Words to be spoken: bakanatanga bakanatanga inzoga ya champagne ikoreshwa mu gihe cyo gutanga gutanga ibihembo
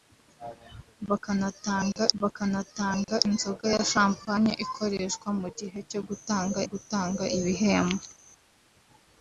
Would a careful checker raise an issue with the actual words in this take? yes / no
no